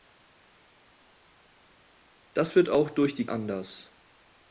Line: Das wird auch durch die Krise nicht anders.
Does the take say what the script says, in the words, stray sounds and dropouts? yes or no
no